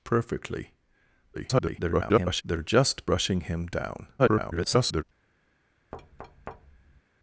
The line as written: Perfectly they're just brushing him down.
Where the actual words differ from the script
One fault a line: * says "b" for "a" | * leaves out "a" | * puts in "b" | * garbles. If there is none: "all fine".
* garbles
* garbles